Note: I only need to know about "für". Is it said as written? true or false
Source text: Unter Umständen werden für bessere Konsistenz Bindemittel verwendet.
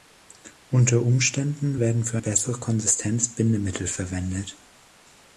true